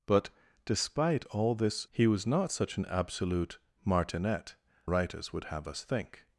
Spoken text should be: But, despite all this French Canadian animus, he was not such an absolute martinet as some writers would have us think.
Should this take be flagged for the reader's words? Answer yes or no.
yes